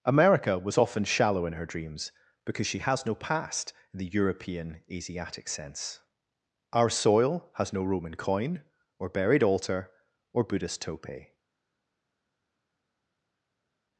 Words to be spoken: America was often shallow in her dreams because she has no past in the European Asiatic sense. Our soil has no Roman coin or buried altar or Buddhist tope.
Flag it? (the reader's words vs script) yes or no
no